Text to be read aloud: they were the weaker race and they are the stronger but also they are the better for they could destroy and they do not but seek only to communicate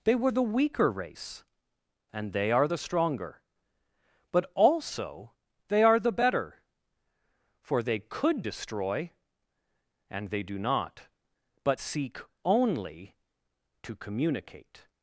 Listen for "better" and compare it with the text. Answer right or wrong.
right